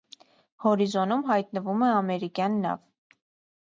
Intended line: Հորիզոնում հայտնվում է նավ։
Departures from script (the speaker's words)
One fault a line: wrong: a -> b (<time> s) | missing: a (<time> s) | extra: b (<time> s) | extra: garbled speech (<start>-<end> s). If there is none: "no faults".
extra: ամերիկյան (2.0 s)